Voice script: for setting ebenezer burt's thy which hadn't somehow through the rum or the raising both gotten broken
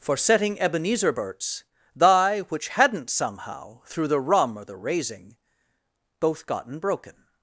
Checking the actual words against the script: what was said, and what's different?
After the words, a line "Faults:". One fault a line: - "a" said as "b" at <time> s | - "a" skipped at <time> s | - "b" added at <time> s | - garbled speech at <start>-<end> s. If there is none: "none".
for setting ebenezer burt's thy which hadn't somehow through the rum or the raising both gotten broken
Faults:
none